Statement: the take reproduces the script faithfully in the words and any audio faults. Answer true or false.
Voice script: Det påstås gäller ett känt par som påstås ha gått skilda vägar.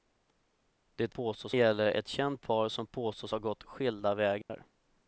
false